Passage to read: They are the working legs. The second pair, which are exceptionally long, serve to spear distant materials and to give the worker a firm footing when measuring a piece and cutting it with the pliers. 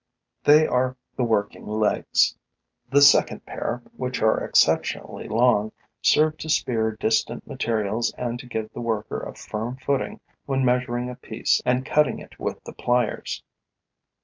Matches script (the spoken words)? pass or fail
pass